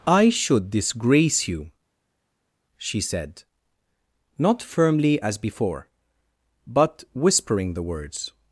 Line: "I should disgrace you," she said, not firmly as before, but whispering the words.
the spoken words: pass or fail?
pass